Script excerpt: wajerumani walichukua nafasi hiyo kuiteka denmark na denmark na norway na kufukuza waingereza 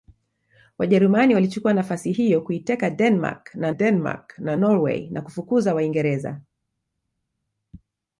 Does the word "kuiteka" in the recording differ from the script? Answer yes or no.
no